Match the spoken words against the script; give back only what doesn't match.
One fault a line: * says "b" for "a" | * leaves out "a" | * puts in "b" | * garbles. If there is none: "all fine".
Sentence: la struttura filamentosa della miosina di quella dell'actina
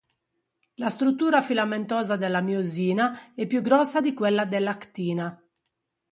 * puts in "è più grossa"